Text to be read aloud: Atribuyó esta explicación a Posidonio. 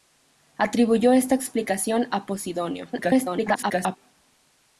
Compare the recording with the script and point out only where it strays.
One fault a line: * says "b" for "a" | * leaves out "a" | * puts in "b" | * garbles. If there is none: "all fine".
* garbles